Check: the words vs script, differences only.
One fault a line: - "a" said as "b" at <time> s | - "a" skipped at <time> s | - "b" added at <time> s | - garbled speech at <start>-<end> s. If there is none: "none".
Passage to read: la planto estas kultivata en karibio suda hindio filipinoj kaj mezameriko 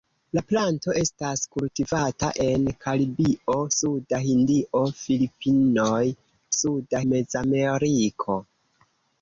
- "kaj" said as "suda" at 6.6 s